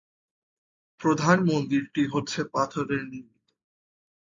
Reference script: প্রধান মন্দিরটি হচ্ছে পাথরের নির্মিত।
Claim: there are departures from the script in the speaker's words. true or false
false